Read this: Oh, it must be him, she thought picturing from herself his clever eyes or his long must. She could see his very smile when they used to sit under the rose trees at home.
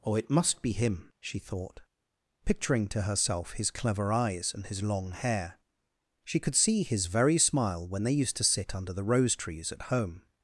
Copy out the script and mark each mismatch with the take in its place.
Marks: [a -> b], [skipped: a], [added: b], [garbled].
Oh, it must be him, she thought picturing [from -> to] herself his clever eyes [or -> and] his long [must. -> hair] She could see his very smile when they used to sit under the rose trees at home.